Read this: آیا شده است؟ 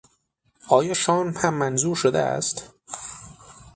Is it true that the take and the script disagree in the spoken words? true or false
true